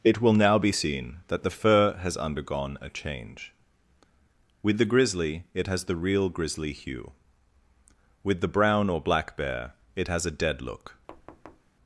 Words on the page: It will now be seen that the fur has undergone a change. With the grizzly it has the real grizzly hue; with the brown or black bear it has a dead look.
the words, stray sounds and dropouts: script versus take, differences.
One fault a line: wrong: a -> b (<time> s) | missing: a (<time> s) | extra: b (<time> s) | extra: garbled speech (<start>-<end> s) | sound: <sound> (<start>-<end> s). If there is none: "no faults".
sound: thud (11.1-11.7 s)